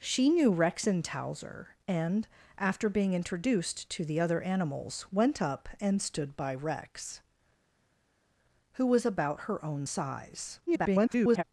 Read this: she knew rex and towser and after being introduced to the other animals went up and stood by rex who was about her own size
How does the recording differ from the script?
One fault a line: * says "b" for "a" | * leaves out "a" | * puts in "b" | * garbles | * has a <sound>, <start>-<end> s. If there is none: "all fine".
* garbles